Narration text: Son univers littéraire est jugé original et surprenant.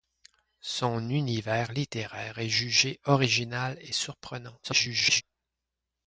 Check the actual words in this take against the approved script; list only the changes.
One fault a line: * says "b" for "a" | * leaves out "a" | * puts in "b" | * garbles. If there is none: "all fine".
* garbles